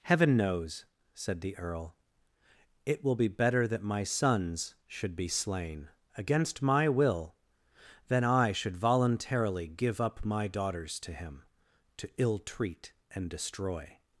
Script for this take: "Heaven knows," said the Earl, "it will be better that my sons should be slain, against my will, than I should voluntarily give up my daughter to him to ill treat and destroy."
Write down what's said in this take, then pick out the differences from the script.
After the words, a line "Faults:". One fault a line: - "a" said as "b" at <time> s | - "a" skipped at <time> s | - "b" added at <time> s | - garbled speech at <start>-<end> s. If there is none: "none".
"Heaven knows," said the Earl, "it will be better that my sons should be slain, against my will, than I should voluntarily give up my daughters to him to ill treat and destroy."
Faults:
- "daughter" said as "daughters" at 10.5 s